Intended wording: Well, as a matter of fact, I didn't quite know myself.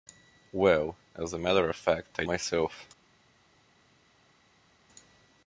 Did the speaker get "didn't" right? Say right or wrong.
wrong